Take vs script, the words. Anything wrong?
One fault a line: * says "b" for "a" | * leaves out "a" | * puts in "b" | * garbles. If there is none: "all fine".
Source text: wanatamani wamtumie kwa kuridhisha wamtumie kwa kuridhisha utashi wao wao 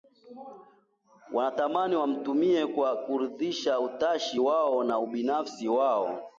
* says "utashi wao na ubinafsi" for "wamtumie kwa kuridhisha utashi wao"